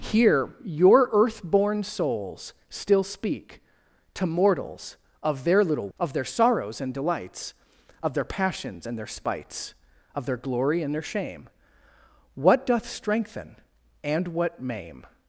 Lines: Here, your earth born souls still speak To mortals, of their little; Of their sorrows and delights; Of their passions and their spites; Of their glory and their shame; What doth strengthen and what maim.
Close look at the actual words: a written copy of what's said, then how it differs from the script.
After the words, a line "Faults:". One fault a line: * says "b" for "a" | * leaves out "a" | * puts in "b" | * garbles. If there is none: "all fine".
Here, your earth born souls still speak To mortals, of their little; Of their sorrows and delights; Of their passions and their spites; Of their glory and their shame; What doth strengthen and what maim.
Faults:
all fine